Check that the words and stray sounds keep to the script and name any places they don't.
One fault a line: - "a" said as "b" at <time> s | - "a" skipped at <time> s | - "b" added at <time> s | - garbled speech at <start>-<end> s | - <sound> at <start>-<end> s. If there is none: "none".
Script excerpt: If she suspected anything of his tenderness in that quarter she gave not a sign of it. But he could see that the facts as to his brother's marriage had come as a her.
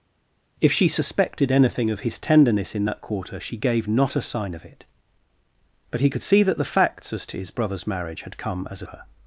none